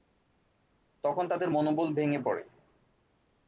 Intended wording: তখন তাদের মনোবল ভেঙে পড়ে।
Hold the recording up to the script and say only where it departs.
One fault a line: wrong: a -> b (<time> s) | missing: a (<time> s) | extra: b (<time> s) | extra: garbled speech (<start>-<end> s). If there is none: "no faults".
no faults